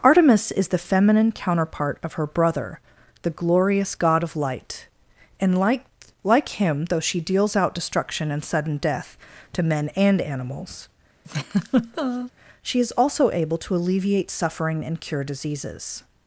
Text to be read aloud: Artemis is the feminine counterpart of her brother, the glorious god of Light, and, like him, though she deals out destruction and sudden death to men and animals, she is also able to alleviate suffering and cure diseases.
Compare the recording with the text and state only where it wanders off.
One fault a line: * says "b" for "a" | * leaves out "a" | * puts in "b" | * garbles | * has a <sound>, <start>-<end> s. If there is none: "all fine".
* puts in "like"
* has a laugh, 11.2-12.3 s